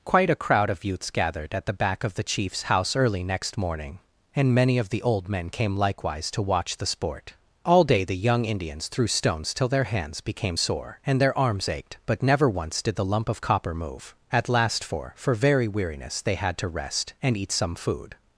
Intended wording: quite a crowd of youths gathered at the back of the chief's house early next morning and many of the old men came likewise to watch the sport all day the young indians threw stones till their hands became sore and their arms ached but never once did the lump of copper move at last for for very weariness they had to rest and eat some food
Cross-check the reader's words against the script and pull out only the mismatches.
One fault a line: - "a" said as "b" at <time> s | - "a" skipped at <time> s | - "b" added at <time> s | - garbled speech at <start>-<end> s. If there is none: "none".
none